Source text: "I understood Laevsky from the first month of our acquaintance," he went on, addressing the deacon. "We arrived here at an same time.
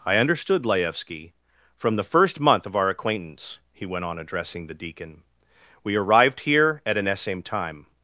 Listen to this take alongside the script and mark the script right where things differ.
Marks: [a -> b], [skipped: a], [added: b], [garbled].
"I understood Laevsky from the first month of our acquaintance," he went on, addressing the deacon. "We arrived here at an same time.